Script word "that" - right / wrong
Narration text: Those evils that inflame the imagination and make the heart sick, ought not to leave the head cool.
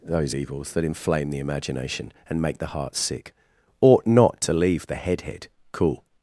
right